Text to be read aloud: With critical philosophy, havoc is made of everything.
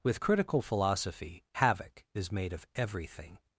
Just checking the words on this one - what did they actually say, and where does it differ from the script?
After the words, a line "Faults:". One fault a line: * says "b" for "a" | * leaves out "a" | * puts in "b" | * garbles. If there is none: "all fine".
With critical philosophy, havoc is made of everything.
Faults:
all fine